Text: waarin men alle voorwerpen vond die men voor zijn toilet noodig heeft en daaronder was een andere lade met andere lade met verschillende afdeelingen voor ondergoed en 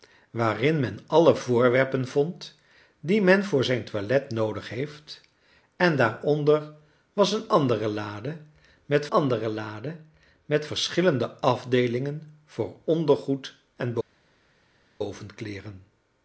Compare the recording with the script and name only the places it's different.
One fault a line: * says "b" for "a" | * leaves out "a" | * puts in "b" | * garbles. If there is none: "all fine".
all fine